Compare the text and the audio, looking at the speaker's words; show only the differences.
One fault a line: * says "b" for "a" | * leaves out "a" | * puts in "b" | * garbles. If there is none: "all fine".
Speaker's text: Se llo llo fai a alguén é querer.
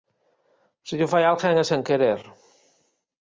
* leaves out "llo"
* puts in "sen"